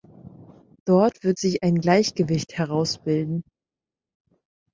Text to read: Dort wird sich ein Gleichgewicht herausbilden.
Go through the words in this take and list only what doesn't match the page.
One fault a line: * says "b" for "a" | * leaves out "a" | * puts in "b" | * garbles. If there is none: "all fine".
all fine